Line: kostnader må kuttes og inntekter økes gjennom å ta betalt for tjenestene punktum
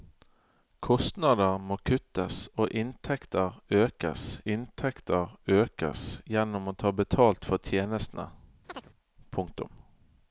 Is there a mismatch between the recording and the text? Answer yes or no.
yes